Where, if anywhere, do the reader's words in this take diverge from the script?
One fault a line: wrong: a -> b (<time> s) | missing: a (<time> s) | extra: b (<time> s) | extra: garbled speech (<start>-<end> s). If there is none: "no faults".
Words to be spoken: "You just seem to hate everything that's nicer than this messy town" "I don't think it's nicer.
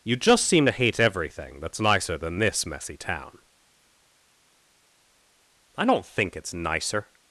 no faults